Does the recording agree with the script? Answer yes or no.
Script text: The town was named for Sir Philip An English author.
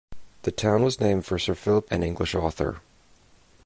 yes